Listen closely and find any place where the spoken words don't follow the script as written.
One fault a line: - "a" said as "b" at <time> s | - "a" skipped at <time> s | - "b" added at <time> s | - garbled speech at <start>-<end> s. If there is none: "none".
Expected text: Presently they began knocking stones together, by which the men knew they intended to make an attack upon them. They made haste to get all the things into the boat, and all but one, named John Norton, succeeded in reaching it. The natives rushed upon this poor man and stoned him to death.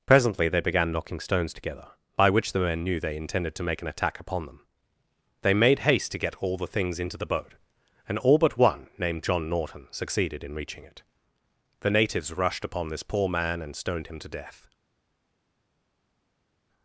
none